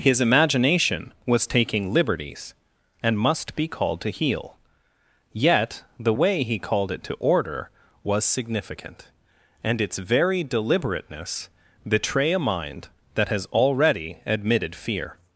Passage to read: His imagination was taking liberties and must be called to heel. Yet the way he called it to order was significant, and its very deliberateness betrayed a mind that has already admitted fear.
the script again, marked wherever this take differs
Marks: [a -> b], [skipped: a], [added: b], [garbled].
His imagination was taking liberties and must be called to heel. Yet the way he called it to order was significant, and its very deliberateness [betrayed -> betray] a mind that has already admitted fear.